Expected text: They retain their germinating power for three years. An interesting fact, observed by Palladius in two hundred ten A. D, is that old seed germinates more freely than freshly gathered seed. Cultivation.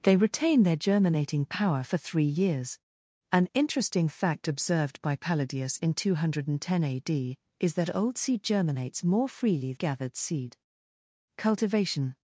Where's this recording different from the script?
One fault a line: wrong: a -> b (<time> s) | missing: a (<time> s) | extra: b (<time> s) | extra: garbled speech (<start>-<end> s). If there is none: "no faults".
missing: than freshly (9.7 s)